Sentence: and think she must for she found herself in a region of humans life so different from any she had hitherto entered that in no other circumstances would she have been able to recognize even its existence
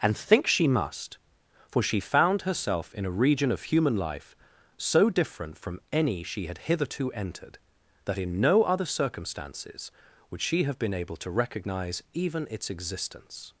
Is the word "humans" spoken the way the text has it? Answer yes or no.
no